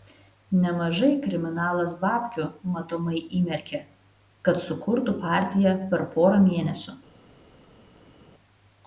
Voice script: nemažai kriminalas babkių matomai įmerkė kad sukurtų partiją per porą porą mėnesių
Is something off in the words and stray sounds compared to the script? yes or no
yes